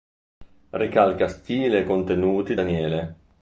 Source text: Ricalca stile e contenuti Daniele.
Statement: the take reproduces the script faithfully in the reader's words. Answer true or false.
true